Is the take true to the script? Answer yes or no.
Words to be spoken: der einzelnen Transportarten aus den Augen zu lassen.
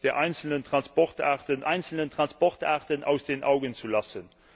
no